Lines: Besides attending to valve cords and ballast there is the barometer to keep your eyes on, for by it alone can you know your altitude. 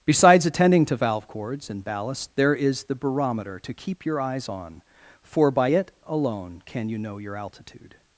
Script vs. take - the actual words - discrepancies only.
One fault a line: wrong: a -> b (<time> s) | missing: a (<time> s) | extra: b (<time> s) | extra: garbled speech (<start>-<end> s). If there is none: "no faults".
no faults